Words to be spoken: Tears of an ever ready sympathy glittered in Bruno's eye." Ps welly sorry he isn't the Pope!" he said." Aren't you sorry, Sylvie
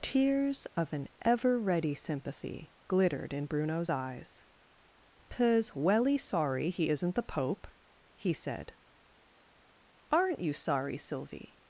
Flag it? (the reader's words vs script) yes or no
yes